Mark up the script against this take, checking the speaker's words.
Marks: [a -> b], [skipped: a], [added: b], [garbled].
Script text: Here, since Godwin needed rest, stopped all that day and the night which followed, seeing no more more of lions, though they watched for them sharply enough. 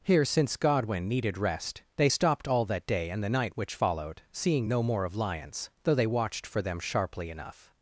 Here, since Godwin needed rest, [added: they] stopped all that day and the night which followed, seeing no more [skipped: more] of lions, though they watched for them sharply enough.